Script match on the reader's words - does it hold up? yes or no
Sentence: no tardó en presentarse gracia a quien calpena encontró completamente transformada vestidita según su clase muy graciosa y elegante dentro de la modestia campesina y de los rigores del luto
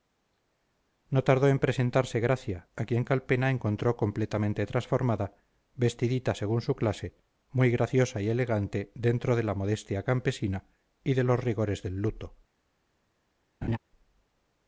yes